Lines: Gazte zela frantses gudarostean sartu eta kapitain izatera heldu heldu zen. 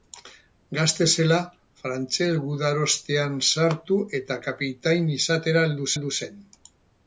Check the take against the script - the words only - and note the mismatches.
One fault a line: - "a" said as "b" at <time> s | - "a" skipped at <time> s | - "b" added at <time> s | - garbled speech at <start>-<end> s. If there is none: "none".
none